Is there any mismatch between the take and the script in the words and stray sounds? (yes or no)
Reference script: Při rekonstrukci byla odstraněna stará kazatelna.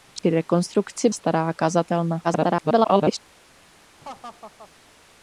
yes